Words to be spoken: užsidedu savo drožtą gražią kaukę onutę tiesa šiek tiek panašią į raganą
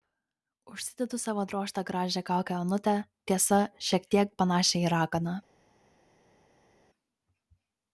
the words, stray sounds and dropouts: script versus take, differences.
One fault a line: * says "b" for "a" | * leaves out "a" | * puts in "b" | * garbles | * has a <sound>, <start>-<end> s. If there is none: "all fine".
all fine